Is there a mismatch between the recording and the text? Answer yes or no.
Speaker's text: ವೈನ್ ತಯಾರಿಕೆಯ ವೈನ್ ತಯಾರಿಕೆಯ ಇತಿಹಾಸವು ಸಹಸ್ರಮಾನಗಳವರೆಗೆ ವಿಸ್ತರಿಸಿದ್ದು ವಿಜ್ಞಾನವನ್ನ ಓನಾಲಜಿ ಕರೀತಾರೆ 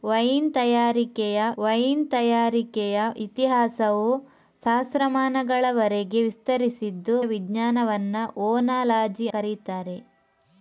no